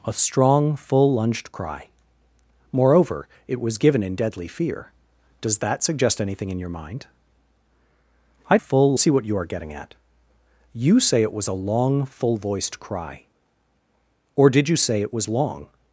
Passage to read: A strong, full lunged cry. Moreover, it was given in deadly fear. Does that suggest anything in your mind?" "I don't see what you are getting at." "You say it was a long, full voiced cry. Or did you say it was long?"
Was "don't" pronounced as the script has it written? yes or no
no